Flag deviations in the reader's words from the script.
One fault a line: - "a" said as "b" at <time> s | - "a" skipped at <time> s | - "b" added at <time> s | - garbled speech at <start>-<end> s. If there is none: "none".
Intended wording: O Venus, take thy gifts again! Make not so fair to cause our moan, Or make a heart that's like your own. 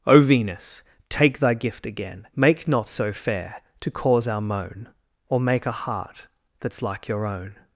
- "gifts" said as "gift" at 1.5 s